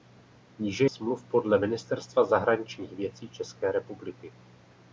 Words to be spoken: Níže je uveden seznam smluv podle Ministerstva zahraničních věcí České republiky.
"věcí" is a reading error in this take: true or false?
false